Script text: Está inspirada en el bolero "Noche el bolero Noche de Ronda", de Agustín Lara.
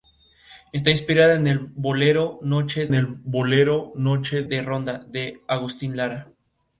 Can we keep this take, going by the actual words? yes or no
yes